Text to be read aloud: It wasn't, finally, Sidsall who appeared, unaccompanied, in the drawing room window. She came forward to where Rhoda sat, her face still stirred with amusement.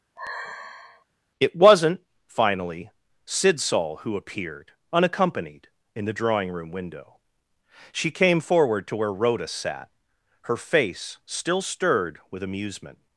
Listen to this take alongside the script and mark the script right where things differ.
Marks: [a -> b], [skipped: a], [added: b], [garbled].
It wasn't, finally, Sidsall who appeared, unaccompanied, in the drawing room window. She came forward to where Rhoda sat, her face still stirred with amusement.